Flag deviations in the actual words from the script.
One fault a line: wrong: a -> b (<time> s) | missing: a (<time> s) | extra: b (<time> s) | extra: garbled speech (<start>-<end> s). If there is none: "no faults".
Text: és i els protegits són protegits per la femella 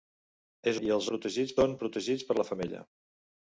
no faults